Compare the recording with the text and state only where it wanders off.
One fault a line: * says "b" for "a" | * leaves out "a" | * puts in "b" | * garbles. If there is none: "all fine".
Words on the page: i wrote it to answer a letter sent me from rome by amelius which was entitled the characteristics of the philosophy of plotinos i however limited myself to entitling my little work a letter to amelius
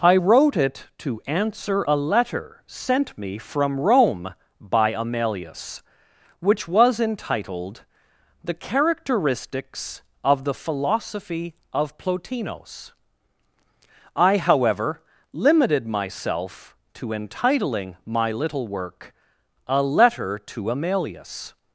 all fine